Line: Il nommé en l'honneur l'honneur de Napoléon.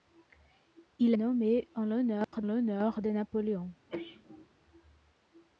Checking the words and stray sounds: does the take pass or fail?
fail